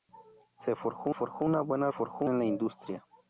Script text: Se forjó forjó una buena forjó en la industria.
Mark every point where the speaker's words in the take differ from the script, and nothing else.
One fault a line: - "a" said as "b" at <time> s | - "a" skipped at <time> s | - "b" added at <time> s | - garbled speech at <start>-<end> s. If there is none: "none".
none